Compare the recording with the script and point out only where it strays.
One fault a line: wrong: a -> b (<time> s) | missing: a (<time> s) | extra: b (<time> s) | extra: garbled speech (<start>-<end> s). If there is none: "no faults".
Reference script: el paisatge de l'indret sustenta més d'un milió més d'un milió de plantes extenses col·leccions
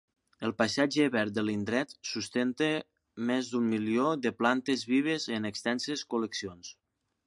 extra: verd (1.1 s)
wrong: més d'un milió de plantes -> de plantes vives en (4.2 s)